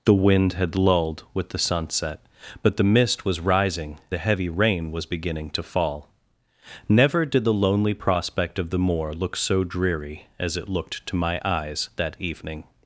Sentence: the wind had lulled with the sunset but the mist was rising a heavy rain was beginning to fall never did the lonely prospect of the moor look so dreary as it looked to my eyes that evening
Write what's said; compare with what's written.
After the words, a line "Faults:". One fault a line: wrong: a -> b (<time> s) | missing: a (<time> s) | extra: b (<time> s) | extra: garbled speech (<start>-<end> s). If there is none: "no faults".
the wind had lulled with the sunset but the mist was rising a heavy rain was beginning to fall never did the lonely prospect of the moor look so dreary as it looked to my eyes that evening
Faults:
no faults